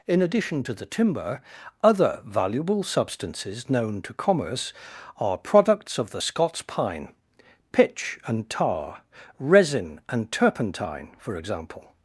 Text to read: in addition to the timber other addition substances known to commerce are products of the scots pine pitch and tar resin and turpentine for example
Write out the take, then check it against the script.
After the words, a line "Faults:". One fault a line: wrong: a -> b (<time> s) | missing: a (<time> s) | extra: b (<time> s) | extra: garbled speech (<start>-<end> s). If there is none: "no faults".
in addition to the timber other valuable substances known to commerce are products of the scots pine pitch and tar resin and turpentine for example
Faults:
wrong: addition -> valuable (2.2 s)